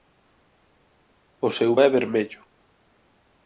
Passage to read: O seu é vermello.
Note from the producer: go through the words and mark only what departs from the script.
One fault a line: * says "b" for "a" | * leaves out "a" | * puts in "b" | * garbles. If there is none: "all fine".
all fine